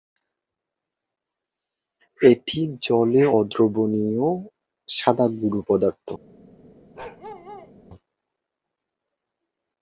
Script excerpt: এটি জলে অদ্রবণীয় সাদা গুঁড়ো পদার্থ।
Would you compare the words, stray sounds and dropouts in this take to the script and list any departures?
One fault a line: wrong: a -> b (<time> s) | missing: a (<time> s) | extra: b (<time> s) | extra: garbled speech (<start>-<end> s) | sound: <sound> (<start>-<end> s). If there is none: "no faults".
sound: bark (6.9-7.7 s)